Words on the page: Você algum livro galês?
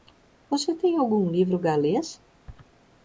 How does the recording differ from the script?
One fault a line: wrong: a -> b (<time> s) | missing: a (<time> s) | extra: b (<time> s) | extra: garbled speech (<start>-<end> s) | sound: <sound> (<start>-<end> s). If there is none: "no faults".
extra: tem (0.7 s)